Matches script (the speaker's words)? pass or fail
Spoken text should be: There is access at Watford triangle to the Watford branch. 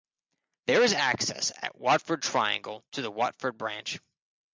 pass